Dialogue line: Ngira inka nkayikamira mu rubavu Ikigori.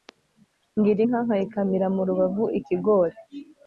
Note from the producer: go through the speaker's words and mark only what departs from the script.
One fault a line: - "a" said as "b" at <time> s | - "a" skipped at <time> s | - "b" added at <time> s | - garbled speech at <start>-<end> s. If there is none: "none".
none